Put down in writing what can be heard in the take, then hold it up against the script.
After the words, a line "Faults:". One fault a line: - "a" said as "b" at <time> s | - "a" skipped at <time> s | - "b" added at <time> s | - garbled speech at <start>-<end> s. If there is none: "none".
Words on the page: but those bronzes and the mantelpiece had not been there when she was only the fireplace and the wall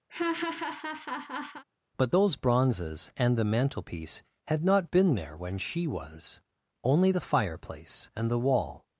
but those bronzes and the mantelpiece had not been there when she was only the fireplace and the wall
Faults:
none